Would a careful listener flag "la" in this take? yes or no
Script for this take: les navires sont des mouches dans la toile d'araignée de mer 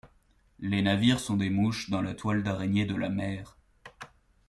no